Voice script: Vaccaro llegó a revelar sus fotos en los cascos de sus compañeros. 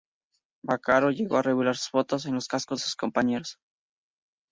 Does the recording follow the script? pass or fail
fail